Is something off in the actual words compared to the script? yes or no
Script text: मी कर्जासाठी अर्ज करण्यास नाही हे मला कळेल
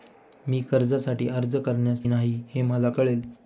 no